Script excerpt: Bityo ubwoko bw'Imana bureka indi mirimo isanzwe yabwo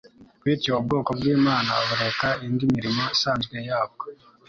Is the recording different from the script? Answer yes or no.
no